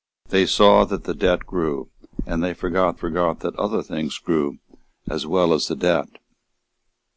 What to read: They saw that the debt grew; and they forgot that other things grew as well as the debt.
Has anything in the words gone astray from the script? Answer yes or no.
yes